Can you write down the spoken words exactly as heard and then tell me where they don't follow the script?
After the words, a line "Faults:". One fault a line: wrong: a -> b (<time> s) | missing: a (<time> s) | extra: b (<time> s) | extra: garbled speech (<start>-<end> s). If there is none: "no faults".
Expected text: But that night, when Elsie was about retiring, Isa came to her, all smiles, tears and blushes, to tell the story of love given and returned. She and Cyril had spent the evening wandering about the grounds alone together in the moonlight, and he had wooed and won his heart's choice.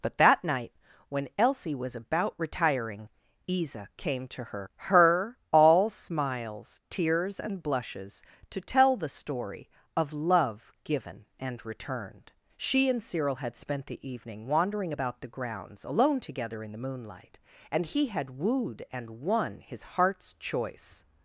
But that night, when Elsie was about retiring, Isa came to her her, all smiles, tears and blushes, to tell the story of love given and returned. She and Cyril had spent the evening wandering about the grounds alone together in the moonlight, and he had wooed and won his heart's choice.
Faults:
extra: her (4.8 s)